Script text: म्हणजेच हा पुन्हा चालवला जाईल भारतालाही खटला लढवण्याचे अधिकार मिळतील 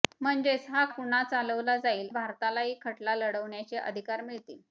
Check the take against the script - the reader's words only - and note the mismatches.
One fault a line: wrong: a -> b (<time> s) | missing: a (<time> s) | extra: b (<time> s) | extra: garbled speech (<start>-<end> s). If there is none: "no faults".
no faults